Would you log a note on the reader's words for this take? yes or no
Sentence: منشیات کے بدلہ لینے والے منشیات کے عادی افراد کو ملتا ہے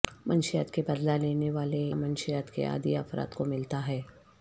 no